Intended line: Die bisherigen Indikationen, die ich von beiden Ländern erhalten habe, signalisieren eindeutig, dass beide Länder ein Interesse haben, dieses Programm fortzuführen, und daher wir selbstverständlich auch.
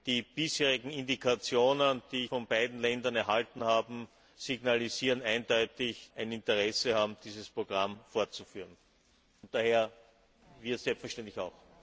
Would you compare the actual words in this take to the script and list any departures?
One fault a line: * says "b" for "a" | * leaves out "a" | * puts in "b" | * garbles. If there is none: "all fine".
* leaves out "ich"
* leaves out "dass beide Länder"